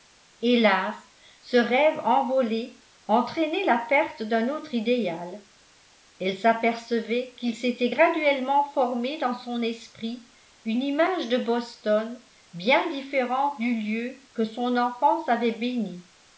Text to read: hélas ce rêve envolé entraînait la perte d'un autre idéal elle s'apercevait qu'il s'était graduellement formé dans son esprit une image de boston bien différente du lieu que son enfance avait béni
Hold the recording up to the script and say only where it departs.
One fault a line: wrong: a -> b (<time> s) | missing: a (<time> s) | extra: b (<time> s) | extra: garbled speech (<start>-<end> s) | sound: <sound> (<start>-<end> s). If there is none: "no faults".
no faults